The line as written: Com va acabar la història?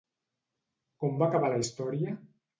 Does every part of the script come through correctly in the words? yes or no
yes